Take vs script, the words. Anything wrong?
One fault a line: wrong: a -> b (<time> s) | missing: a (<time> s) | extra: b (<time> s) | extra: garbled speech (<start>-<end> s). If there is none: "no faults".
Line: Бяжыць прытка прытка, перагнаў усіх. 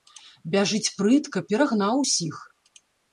missing: прытка (1.4 s)